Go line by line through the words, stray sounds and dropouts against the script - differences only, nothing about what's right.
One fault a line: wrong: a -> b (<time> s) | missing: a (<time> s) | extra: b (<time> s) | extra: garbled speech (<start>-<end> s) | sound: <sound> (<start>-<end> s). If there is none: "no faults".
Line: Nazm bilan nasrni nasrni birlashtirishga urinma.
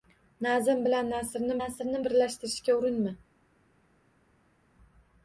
no faults